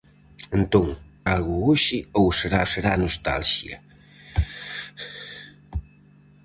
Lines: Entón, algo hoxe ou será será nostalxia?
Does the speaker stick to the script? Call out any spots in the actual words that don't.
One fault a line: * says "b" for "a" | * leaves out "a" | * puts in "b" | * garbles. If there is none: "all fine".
all fine